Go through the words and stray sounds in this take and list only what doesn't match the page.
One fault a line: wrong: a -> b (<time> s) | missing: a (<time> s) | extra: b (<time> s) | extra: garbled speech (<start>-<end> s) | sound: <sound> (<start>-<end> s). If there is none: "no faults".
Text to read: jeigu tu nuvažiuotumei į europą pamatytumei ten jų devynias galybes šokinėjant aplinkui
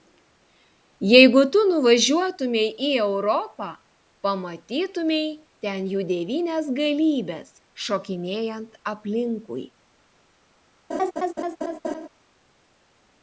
sound: laugh (10.9-12.1 s)